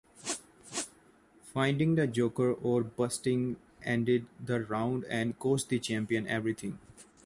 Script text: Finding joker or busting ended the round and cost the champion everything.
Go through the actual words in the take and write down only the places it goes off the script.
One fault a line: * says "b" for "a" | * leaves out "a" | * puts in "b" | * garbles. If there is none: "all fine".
* puts in "the"